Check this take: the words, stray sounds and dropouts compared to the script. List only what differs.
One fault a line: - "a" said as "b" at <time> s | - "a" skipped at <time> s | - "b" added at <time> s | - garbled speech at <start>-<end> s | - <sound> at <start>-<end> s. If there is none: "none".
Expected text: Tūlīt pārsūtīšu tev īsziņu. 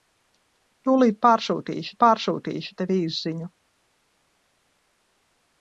- "pārsūtīšu" added at 2.0 s